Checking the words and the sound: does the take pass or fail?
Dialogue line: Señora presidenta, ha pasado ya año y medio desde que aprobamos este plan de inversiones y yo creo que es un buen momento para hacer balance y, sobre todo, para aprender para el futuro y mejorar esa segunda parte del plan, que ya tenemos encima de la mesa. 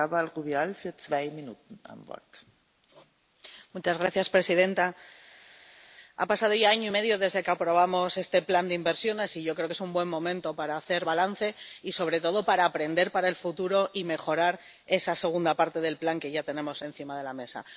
pass